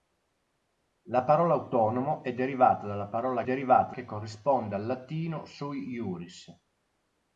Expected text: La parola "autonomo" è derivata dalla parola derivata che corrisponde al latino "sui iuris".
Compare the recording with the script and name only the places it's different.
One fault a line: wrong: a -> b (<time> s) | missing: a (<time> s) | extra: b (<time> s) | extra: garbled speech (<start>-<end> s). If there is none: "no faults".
no faults